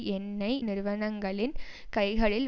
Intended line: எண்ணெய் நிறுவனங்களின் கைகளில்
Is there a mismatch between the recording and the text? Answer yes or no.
no